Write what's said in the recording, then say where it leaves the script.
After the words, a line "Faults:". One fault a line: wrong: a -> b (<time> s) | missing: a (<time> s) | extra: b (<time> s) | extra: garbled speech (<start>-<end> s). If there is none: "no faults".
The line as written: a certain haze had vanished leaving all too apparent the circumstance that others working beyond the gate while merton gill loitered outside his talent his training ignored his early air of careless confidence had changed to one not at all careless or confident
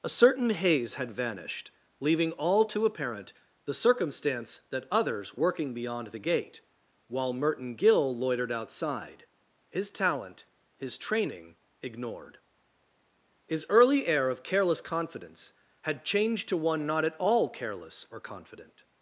a certain haze had vanished leaving all too apparent the circumstance that others working beyond the gate while merton gill loitered outside his talent his training ignored his early air of careless confidence had changed to one not at all careless or confident
Faults:
no faults